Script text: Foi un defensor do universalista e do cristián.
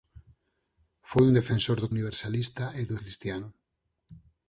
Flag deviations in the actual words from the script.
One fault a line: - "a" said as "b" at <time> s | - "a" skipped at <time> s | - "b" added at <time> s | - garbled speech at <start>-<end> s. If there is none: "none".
none